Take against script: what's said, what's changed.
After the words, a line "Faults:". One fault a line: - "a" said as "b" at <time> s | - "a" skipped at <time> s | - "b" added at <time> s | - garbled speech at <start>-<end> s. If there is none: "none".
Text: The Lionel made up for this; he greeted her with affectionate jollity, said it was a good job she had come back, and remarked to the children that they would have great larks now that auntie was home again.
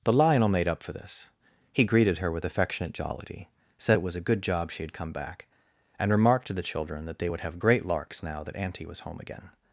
The Lionel made up for this; he greeted her with affectionate jollity, said it was a good job she had come back, and remarked to the children that they would have great larks now that auntie was home again.
Faults:
none